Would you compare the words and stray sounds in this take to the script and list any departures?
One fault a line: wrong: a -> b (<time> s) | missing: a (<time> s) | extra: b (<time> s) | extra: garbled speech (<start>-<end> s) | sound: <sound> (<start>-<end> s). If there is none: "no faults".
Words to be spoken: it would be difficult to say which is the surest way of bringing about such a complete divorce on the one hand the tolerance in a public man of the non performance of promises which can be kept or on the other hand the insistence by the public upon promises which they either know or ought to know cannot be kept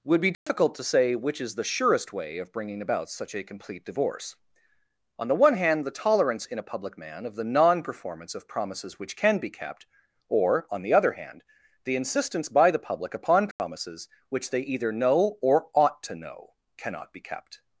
missing: it (0.0 s)
sound: dropout (0.3-0.5 s)
sound: dropout (13.5-13.6 s)